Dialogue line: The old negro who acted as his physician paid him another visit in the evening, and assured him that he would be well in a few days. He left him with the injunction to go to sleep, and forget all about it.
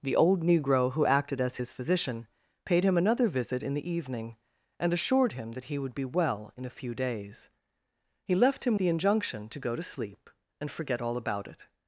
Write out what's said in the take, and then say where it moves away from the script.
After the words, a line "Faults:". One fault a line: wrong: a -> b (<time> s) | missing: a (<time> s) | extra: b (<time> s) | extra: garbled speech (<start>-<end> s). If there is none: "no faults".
The old negro who acted as his physician paid him another visit in the evening, and assured him that he would be well in a few days. He left him the injunction to go to sleep, and forget all about it.
Faults:
missing: with (8.8 s)